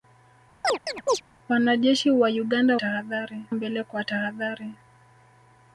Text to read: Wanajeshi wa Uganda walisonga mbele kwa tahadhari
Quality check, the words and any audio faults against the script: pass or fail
fail